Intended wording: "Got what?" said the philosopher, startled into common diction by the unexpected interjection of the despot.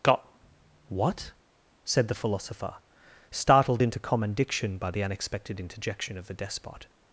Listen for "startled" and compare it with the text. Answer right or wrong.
right